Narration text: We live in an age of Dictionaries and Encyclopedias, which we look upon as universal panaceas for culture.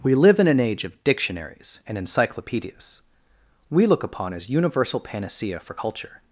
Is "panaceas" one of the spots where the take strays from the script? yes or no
yes